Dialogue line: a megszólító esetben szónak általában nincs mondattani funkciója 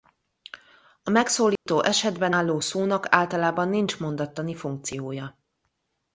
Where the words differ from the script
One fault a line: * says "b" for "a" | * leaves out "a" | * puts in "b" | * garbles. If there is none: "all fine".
* puts in "álló"